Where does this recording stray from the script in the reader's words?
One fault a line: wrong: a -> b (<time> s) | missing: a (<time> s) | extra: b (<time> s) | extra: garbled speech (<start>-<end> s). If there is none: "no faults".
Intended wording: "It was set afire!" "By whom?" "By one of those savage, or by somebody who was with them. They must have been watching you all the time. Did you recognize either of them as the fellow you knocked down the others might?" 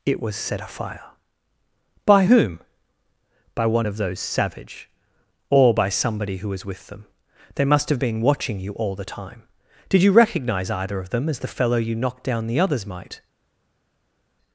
no faults